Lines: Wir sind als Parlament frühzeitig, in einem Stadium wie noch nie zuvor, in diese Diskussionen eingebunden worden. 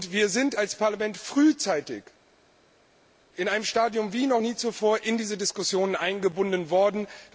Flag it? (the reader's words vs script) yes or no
no